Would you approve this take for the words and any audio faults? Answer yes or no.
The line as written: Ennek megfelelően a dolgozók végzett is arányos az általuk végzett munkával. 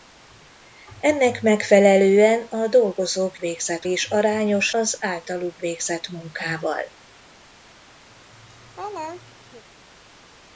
no